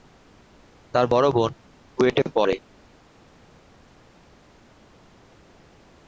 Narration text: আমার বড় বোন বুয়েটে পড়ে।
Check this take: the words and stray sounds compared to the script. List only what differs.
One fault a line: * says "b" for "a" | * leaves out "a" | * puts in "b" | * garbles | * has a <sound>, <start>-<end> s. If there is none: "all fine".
* says "তার" for "আমার"